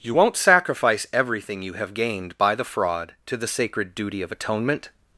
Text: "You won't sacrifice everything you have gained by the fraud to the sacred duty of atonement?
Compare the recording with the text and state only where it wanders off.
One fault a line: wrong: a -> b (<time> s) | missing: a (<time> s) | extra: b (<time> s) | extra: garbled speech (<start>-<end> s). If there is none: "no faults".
no faults